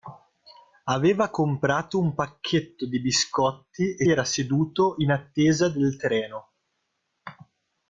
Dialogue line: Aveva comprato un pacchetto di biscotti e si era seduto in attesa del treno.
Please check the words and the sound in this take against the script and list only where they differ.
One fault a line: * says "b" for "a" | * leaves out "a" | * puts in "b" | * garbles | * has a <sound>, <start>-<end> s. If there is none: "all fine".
* leaves out "si"